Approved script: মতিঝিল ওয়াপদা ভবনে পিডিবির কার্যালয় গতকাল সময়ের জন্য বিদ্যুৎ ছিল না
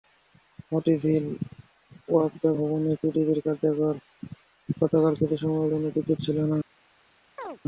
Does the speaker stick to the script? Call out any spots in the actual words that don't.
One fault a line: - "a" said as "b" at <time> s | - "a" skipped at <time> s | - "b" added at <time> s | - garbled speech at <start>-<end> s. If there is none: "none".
- "কিছু" added at 5.2 s